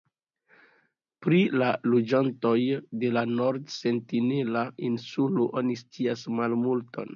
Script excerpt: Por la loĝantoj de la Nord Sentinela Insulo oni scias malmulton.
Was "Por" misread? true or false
true